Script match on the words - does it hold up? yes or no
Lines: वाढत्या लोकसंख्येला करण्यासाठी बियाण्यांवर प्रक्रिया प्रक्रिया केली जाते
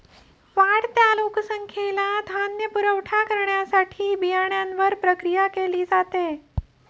no